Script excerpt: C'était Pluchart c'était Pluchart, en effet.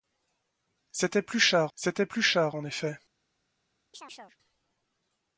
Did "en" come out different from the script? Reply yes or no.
no